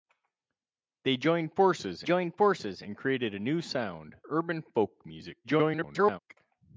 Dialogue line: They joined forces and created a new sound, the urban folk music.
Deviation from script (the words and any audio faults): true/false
true